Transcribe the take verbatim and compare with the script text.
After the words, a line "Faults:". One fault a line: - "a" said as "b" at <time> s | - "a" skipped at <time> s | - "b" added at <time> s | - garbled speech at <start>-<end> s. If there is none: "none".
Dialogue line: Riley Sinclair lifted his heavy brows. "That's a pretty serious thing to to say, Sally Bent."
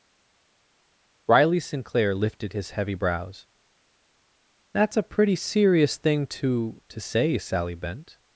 Riley Sinclair lifted his heavy brows. "That's a pretty serious thing to to say, Sally Bent."
Faults:
none